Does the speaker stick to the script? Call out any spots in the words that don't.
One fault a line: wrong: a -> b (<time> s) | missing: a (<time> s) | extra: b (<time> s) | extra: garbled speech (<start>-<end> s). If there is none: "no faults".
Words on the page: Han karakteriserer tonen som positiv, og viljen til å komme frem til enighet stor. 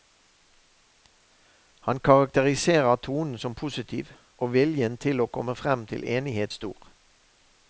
no faults